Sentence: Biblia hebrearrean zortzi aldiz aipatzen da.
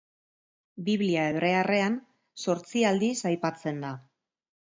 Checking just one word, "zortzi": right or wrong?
right